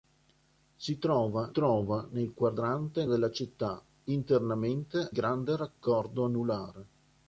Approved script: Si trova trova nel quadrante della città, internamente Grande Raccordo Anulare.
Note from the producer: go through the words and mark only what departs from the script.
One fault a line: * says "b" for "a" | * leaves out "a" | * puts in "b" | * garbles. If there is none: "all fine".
all fine